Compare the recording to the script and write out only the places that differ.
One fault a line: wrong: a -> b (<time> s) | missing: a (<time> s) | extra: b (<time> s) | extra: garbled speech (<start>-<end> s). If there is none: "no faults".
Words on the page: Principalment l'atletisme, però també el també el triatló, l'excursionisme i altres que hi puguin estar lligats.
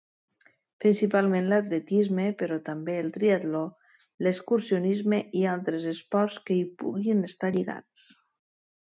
missing: també el (3.1 s)
extra: esports (6.0 s)